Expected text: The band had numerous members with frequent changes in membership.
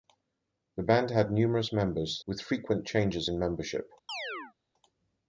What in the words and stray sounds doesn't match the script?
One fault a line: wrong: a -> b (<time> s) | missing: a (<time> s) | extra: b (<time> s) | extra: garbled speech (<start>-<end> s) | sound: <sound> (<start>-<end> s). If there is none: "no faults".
sound: chirp (4.1-4.5 s)